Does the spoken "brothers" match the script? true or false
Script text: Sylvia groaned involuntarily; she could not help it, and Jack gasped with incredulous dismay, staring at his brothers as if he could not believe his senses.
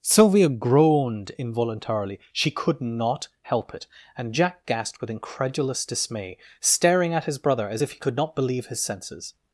false